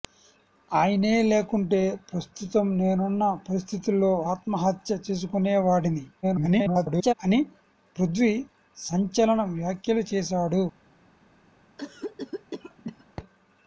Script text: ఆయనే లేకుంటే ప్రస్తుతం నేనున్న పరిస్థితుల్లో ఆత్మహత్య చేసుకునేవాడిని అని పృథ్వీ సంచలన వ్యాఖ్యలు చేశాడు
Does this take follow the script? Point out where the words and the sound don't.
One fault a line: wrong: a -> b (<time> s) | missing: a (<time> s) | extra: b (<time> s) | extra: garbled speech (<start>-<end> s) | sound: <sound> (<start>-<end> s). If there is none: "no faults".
extra: garbled speech (6.2-7.1 s)
sound: cough (11.8-13.1 s)